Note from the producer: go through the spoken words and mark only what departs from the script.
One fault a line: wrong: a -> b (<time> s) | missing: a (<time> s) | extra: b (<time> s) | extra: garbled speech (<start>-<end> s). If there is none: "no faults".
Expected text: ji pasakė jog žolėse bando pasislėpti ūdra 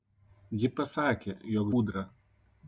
missing: žolėse bando pasislėpti (1.7 s)